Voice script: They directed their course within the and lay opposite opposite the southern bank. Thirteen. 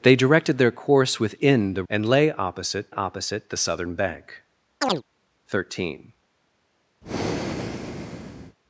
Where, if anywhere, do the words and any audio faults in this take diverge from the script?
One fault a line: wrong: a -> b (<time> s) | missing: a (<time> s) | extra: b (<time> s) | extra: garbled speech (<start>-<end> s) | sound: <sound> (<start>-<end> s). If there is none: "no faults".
sound: chirp (4.8-5.0 s)
sound: breath (7.0-8.6 s)